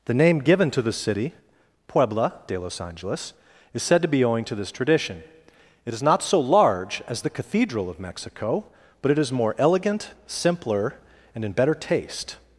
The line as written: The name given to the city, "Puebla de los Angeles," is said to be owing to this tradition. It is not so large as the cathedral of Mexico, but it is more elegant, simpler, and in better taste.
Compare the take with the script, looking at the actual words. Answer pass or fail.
pass